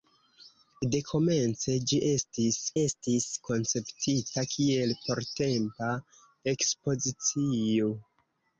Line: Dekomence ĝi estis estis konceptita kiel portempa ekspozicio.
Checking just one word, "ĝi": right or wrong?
right